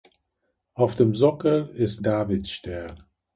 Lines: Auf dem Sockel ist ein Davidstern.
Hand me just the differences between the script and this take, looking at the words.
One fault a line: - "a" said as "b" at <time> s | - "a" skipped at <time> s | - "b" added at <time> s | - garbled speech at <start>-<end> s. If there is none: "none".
- "ein" skipped at 2.0 s